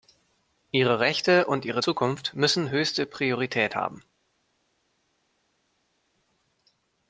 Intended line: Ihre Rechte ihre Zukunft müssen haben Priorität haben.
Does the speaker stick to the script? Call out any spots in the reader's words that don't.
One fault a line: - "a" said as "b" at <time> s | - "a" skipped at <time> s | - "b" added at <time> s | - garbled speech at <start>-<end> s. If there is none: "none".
- "und" added at 1.4 s
- "haben" said as "höchste" at 2.7 s